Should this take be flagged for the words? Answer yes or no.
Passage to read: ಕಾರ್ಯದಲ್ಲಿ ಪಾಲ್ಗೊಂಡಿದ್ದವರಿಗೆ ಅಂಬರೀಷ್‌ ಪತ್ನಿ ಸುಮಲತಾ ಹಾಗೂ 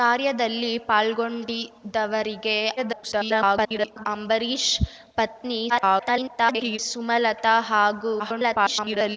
yes